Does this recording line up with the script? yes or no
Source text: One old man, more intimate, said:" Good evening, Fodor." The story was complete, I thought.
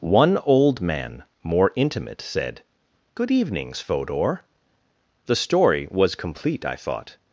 no